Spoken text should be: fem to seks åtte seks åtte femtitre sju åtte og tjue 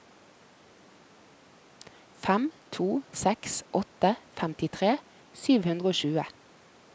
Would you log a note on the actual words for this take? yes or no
yes